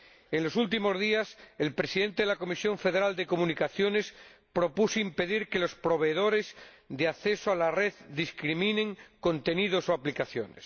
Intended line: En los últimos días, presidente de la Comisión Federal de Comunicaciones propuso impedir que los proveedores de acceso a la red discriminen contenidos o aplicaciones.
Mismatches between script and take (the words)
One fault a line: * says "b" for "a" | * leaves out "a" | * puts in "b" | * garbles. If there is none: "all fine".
* puts in "el"